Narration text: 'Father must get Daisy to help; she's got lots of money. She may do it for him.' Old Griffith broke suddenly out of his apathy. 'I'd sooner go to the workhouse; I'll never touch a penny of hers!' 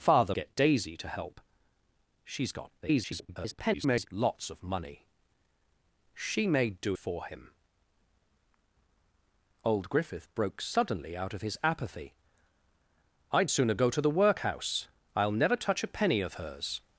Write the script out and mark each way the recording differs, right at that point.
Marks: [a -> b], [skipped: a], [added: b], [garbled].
'Father [skipped: must] get Daisy to help; she's got [garbled] lots of money. She may do [skipped: it] for him.' Old Griffith broke suddenly out of his apathy. 'I'd sooner go to the workhouse; I'll never touch a penny of hers!'